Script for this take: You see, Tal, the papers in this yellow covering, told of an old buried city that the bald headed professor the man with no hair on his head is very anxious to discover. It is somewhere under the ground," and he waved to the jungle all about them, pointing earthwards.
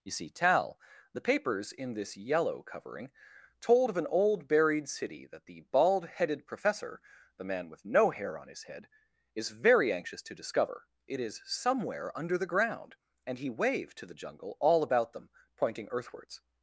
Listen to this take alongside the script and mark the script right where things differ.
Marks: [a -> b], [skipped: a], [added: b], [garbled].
You see, Tal, the papers in this yellow covering, told of an old buried city that the bald headed professor the man with no hair on his head is very anxious to discover. It is somewhere under the ground," and he waved to the jungle all about them, pointing earthwards.